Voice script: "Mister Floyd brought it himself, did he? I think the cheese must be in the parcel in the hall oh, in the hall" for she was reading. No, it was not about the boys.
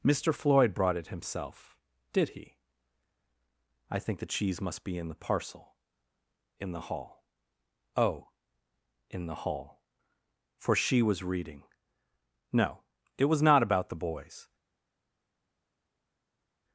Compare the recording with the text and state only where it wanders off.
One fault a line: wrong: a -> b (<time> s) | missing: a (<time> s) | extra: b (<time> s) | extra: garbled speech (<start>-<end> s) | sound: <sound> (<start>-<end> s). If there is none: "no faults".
no faults